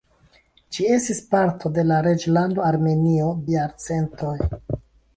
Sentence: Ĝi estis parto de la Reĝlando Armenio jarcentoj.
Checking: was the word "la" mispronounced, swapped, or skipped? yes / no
no